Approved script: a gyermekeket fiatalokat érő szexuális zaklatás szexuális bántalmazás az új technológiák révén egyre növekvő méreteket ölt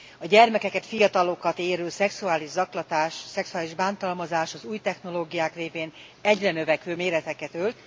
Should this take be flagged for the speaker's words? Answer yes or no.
no